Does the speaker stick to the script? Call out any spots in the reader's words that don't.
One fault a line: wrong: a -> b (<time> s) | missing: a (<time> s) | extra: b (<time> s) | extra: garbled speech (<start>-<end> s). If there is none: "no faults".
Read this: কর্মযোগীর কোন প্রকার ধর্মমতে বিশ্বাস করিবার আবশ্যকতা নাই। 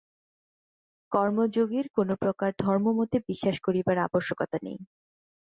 no faults